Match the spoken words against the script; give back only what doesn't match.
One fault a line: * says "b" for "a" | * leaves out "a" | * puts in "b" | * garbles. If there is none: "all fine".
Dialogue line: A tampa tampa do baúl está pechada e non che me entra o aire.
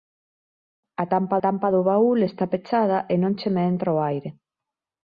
all fine